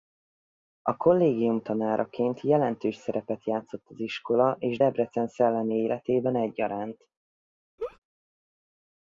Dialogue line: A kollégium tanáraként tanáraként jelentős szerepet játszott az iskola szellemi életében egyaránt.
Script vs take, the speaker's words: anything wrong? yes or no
yes